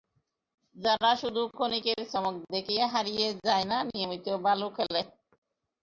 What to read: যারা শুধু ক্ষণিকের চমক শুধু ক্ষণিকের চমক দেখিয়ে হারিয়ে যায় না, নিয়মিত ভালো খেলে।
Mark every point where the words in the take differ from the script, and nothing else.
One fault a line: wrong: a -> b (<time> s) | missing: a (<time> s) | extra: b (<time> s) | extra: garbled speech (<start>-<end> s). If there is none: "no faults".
missing: শুধু ক্ষণিকের চমক (2.4 s)